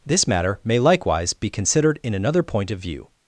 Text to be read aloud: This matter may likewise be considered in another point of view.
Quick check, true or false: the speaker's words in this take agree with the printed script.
true